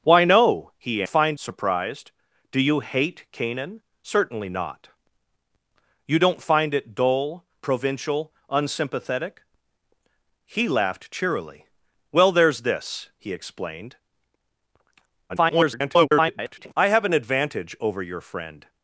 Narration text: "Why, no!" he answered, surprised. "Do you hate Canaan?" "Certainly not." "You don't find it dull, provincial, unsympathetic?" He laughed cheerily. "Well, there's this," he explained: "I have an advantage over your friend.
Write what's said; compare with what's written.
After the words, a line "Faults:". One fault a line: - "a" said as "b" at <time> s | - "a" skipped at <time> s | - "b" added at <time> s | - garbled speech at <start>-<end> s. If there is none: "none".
"Why, no!" he find, surprised. "Do you hate Canaan?" "Certainly not." "You don't find it dull, provincial, unsympathetic?" He laughed cheerily. "Well, there's this," he explained: [garbled] "I have an advantage over your friend.
Faults:
- "answered" said as "find" at 1.1 s
- garbled speech at 15.3-16.7 s